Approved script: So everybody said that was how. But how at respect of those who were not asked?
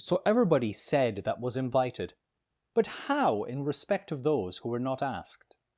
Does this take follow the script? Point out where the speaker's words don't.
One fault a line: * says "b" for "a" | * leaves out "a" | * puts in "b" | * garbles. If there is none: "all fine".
* says "invited" for "how"
* says "in" for "at"